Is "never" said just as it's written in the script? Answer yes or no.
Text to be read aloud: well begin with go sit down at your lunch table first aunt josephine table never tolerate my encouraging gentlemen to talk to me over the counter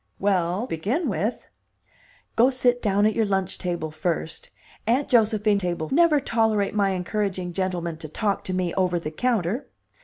yes